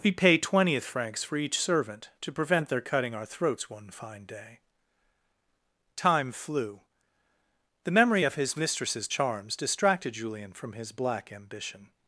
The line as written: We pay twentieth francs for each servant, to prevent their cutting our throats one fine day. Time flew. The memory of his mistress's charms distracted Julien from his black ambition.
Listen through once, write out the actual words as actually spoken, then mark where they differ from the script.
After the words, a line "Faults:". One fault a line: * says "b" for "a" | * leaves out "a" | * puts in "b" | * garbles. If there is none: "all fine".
We pay twentieth francs for each servant, to prevent their cutting our throats one fine day. Time flew. The memory of his mistress's charms distracted Julien from his black ambition.
Faults:
all fine